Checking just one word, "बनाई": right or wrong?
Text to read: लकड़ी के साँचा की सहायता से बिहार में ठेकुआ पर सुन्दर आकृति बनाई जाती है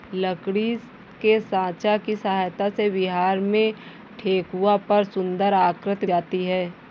wrong